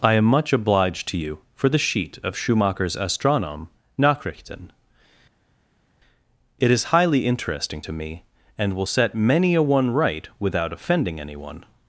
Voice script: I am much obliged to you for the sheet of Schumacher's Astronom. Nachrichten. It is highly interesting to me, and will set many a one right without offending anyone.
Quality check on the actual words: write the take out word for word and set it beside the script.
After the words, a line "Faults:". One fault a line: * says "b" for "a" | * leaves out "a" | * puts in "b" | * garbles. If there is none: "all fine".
I am much obliged to you for the sheet of Schumacher's Astronom. Nachrichten. It is highly interesting to me, and will set many a one right without offending anyone.
Faults:
all fine